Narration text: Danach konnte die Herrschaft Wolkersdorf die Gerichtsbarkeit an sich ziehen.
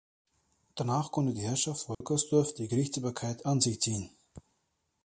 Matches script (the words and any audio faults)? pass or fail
fail